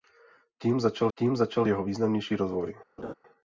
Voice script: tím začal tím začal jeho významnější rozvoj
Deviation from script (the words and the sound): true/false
true